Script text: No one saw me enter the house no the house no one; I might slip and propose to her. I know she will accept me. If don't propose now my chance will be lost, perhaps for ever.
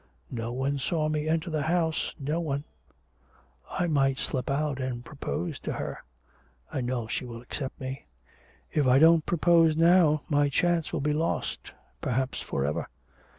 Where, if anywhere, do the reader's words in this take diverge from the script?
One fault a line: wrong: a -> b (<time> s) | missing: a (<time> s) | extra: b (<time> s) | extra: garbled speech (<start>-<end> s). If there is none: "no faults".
missing: the house no (2.4 s)
extra: out (4.5 s)
extra: I (8.9 s)